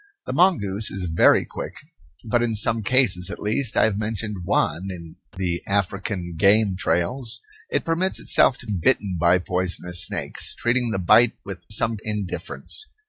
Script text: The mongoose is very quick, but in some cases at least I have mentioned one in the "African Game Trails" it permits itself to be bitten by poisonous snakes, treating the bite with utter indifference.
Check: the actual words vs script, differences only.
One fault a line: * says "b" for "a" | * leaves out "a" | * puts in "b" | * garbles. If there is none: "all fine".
* leaves out "be"
* says "some" for "utter"